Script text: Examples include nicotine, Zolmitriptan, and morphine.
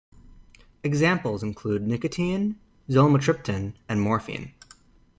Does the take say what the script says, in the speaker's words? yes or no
yes